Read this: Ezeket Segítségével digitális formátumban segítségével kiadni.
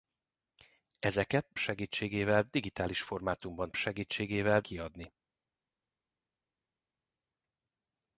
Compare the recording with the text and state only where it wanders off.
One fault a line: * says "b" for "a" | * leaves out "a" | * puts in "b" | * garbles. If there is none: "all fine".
all fine